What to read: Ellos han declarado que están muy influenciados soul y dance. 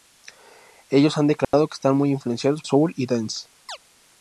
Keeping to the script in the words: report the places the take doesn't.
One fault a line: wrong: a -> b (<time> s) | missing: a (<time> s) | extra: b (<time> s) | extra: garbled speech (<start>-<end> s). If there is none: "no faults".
no faults